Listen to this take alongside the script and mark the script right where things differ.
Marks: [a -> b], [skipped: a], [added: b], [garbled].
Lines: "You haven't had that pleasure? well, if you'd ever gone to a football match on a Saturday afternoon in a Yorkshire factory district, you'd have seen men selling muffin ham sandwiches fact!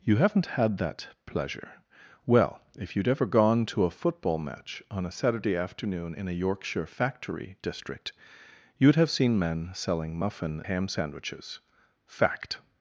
"You haven't had that pleasure? well, if you'd ever gone to a football match on a Saturday afternoon in a Yorkshire factory district, you'd have seen men selling muffin ham sandwiches fact!